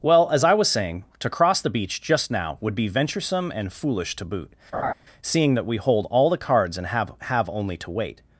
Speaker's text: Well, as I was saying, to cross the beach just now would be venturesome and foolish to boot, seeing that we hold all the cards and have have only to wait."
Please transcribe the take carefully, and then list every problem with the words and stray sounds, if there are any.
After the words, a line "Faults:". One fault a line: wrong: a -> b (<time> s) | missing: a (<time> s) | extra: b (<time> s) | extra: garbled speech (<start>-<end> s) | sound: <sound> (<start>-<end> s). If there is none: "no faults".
Well, as I was saying, to cross the beach just now would be venturesome and foolish to boot, seeing that we hold all the cards and have have only to wait."
Faults:
sound: laugh (4.7-4.9 s)